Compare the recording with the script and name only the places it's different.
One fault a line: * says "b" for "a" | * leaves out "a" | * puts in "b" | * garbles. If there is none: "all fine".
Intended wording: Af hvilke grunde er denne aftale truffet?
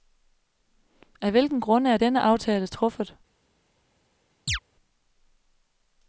all fine